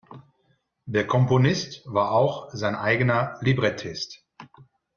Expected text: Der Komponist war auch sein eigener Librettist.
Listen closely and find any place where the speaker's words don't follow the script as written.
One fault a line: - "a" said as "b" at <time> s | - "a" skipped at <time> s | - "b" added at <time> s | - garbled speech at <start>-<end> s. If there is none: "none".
none